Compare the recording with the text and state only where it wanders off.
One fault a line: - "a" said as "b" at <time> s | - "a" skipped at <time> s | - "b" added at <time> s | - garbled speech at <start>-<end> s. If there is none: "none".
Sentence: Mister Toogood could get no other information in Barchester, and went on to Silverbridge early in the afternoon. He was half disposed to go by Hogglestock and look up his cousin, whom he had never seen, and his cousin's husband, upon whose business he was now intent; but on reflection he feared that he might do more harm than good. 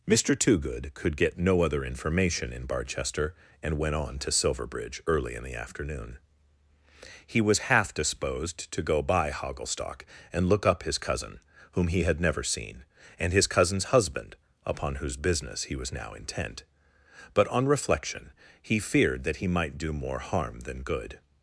none